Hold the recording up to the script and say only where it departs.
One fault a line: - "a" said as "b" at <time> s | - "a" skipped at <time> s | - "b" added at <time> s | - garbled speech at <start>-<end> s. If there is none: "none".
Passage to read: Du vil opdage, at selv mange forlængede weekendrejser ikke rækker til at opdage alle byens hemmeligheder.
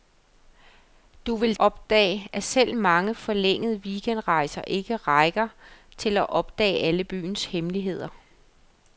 none